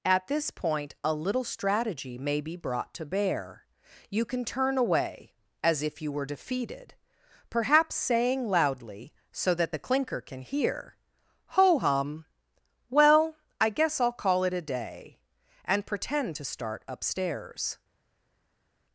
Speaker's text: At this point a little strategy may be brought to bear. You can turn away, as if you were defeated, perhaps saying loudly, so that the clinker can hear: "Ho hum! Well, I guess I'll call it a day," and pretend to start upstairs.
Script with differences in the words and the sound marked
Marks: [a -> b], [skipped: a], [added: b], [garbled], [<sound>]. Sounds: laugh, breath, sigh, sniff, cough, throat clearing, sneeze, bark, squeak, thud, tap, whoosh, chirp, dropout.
At this point a little strategy may be brought to bear. You can turn away, as if you were defeated, perhaps saying loudly, so that the clinker can hear: "Ho hum! Well, I guess I'll call it a day," and pretend to start upstairs.